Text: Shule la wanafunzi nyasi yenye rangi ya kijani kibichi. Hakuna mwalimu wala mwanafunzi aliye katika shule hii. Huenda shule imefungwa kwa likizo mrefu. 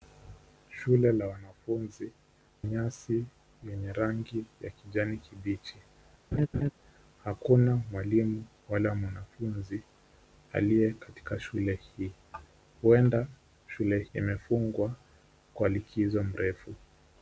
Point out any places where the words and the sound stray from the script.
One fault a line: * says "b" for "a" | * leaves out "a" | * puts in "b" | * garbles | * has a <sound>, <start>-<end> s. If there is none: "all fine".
* has a laugh, 6.3-6.7 s